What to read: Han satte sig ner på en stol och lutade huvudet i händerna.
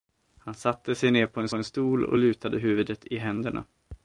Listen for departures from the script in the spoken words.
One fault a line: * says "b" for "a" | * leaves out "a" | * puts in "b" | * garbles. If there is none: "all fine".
* puts in "en"